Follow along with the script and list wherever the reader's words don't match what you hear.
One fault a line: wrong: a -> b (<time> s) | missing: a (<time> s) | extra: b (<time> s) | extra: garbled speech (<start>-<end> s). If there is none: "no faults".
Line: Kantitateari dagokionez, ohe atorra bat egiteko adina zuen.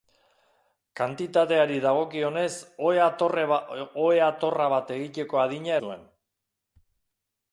no faults